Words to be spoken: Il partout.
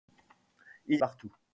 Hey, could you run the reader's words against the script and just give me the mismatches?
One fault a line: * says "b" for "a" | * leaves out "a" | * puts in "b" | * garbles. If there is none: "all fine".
all fine